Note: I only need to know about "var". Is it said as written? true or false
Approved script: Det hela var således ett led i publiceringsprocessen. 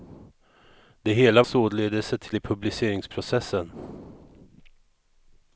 false